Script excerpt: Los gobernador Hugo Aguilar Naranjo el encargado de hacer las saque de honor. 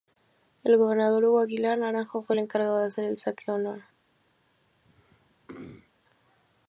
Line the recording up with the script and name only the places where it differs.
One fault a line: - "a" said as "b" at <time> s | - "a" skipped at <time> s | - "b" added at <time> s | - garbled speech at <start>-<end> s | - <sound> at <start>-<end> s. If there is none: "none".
- "Los" said as "El" at 0.6 s
- "fue" added at 2.2 s
- "las" said as "el" at 3.0 s
- throat clearing at 4.8-5.9 s